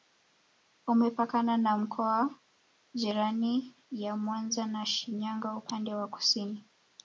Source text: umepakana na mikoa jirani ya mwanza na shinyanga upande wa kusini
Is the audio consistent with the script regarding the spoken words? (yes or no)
yes